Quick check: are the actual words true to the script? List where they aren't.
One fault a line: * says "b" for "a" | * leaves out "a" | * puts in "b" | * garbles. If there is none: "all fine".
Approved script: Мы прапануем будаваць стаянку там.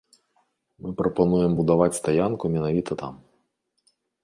* puts in "менавіта"